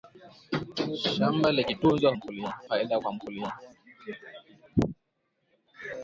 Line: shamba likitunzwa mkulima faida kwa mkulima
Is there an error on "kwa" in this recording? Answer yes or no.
no